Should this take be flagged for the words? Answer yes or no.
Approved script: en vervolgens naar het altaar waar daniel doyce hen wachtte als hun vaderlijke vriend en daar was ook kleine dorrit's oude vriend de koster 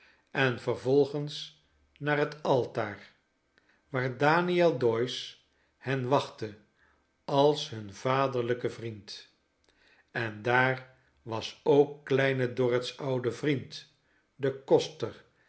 no